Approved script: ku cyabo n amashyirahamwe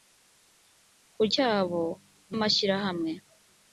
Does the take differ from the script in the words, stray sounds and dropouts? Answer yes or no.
no